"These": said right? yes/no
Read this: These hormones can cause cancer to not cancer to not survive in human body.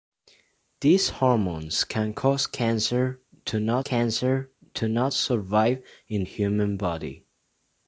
yes